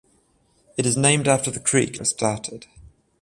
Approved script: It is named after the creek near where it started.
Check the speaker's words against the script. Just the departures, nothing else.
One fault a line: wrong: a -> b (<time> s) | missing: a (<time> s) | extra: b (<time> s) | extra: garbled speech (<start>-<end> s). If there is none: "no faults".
missing: near where (2.0 s)